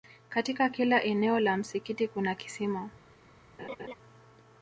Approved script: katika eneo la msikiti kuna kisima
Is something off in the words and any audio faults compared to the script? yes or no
yes